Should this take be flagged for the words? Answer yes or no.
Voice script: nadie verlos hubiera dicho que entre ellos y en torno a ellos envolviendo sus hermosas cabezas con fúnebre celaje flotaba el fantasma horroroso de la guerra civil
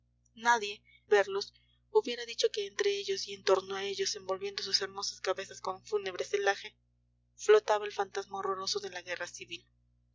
no